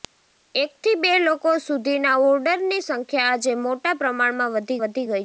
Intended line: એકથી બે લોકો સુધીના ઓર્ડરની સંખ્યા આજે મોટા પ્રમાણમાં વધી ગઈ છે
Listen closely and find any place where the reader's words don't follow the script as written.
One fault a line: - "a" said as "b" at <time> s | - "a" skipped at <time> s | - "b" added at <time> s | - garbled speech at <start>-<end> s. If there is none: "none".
- "વધી" added at 4.8 s